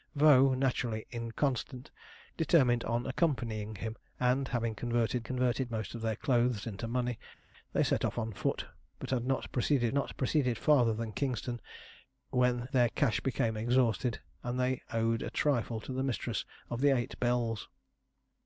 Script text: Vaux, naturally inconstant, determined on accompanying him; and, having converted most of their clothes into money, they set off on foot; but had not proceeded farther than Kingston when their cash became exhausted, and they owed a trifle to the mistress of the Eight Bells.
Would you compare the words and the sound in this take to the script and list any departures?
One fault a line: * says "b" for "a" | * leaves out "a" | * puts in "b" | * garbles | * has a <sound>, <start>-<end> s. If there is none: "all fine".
* puts in "converted"
* puts in "not proceeded"